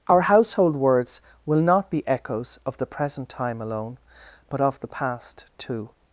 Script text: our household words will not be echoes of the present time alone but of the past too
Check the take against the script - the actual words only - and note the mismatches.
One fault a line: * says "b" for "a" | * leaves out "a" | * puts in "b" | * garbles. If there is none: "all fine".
all fine